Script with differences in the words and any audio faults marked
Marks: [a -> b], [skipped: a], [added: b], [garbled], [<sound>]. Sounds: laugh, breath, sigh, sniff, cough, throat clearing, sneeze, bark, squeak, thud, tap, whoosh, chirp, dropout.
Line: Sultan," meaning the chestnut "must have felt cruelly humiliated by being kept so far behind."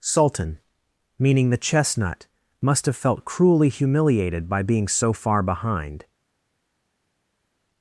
Sultan," meaning the chestnut "must have felt cruelly humiliated by being [skipped: kept] so far behind."